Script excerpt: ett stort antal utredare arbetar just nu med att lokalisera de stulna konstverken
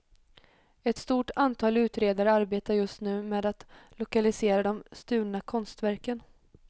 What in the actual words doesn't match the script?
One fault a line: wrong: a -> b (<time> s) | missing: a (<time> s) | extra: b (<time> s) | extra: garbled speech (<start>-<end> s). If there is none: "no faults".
no faults